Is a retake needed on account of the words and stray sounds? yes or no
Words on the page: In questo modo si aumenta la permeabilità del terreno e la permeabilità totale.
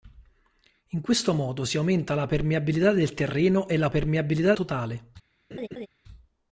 yes